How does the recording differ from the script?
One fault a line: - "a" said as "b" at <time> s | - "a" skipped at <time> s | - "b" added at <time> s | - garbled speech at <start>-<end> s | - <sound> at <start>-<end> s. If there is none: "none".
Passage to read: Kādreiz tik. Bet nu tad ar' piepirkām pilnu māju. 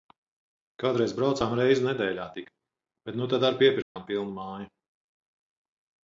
- "braucām reizi nedēļā" added at 1.2 s
- dropout at 3.8-4.0 s